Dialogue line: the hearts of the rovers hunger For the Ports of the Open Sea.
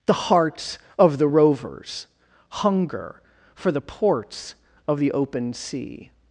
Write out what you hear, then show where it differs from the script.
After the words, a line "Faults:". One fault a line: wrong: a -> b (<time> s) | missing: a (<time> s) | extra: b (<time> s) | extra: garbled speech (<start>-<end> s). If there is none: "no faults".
the hearts of the rovers hunger For the Ports of the Open Sea.
Faults:
no faults